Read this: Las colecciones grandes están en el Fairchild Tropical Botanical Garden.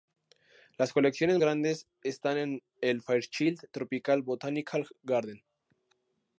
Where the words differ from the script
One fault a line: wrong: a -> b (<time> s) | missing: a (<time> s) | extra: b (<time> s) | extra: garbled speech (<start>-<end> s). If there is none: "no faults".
no faults